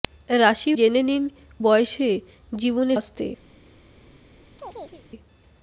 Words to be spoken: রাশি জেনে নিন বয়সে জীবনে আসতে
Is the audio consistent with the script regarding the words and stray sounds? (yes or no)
no